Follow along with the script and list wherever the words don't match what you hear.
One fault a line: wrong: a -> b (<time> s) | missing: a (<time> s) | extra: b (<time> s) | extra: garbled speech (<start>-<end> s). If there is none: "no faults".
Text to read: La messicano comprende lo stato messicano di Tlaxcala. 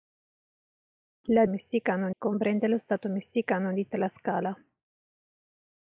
no faults